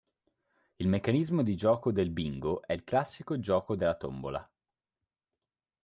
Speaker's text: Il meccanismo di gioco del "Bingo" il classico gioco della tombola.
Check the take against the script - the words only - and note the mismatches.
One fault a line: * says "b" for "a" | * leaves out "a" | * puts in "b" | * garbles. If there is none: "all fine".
* puts in "è"